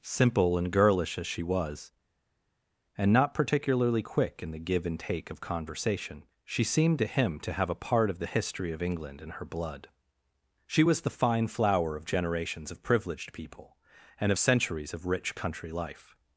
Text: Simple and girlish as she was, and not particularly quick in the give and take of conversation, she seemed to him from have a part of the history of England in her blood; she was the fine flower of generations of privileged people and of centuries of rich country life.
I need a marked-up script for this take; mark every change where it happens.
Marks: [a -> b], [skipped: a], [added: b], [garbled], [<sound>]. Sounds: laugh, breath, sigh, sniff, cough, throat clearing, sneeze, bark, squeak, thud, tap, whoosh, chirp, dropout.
Simple and girlish as she was, and not particularly quick in the give and take of conversation, she seemed to him [from -> to] have a part of the history of England in her blood; she was the fine flower of generations of privileged people and of centuries of rich country life.